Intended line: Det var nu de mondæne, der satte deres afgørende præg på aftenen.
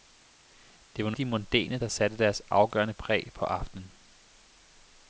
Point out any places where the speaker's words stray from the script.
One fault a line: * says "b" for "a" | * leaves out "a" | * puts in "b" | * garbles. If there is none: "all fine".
all fine